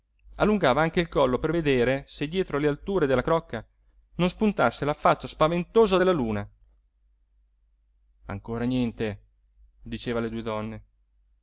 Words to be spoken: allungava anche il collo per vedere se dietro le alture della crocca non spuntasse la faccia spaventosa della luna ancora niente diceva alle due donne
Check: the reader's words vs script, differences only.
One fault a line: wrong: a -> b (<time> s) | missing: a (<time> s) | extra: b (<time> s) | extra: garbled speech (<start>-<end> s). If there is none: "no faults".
no faults